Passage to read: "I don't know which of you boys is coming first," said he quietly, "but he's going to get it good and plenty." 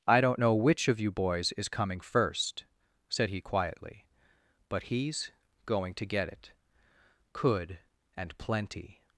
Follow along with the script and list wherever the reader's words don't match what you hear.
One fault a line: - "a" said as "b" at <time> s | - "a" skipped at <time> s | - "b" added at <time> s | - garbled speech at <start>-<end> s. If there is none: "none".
- "good" said as "could" at 7.3 s